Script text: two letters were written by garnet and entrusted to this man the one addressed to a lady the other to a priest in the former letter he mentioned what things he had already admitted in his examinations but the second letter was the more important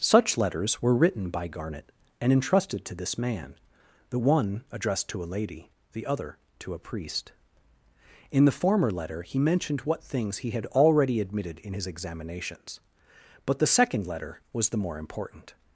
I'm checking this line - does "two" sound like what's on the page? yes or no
no